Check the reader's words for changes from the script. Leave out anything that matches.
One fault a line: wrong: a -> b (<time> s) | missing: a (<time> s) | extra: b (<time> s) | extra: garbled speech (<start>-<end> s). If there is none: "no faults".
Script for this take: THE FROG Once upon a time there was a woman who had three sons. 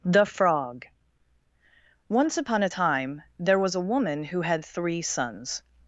no faults